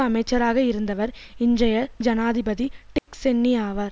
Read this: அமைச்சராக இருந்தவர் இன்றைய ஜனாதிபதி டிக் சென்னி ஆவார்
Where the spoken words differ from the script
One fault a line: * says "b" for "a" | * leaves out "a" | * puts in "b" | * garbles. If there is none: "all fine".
all fine